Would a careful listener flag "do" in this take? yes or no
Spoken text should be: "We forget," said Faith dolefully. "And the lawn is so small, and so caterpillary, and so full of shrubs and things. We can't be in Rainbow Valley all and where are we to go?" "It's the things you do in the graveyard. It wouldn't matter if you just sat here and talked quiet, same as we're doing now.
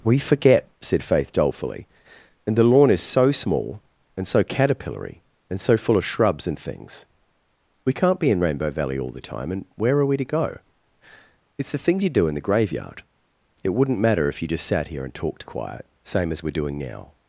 no